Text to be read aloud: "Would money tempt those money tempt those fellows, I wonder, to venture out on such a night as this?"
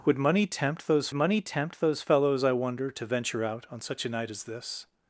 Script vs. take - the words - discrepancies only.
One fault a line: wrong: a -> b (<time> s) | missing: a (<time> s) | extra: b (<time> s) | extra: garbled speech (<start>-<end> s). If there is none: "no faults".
no faults